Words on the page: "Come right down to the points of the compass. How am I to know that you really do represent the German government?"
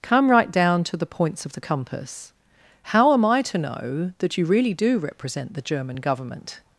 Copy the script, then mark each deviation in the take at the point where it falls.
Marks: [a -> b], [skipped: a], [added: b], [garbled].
"Come right down to the points of the compass. How am I to know that you really do represent the German government?"